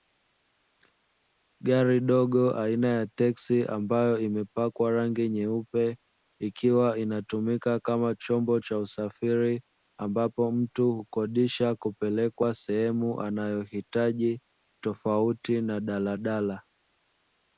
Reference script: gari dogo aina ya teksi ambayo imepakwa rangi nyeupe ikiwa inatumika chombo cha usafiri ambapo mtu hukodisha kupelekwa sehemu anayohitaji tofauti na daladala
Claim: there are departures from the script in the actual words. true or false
true